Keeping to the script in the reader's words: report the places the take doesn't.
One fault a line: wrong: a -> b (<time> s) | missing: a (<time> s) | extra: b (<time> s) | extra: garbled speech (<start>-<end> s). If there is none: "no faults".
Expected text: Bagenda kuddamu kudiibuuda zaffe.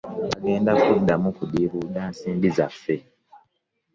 extra: nsimbi (2.1 s)